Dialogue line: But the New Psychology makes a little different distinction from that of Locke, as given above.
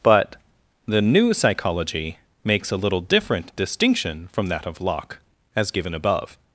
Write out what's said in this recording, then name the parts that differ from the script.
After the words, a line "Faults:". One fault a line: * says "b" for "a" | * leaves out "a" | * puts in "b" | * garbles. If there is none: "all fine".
But the New Psychology makes a little different distinction from that of Locke, as given above.
Faults:
all fine